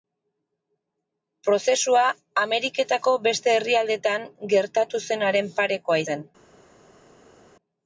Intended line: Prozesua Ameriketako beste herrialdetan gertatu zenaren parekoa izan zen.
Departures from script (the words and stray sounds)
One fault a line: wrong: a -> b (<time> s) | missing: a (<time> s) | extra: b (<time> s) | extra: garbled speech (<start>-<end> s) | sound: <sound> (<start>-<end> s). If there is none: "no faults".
missing: izan (6.0 s)